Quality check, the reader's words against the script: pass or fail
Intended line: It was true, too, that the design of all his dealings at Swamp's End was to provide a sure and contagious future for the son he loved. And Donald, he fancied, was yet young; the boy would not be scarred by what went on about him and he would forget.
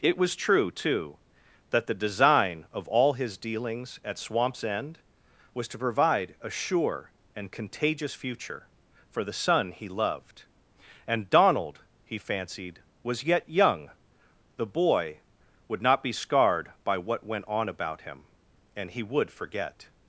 pass